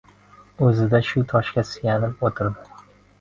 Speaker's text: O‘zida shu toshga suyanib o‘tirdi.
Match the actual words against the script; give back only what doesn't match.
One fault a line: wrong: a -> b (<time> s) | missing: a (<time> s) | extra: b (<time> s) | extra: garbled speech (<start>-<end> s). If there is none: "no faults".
no faults